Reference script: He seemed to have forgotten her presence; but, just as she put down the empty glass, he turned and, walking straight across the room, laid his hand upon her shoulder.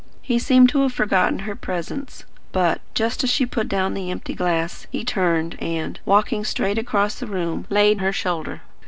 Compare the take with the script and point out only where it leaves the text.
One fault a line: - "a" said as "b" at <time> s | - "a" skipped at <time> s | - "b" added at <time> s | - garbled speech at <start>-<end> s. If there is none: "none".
- "his hand upon" skipped at 8.0 s